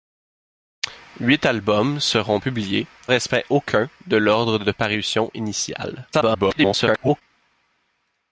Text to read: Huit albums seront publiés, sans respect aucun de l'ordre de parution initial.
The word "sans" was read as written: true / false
false